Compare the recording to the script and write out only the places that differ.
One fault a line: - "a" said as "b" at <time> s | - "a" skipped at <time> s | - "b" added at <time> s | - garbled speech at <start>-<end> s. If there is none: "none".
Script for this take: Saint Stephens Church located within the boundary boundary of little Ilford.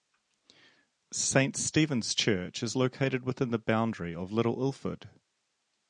- "is" added at 2.6 s
- "boundary" skipped at 4.2 s